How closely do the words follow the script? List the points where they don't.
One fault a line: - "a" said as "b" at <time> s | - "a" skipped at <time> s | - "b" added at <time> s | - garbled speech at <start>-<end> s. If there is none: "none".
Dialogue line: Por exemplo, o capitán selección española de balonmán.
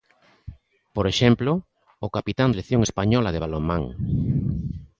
none